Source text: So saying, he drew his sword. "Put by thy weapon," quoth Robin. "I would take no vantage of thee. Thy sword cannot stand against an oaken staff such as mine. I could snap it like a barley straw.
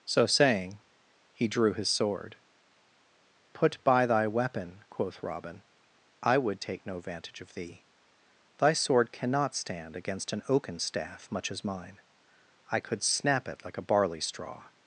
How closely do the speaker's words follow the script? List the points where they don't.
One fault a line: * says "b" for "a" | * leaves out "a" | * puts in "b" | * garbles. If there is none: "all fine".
* says "much" for "such"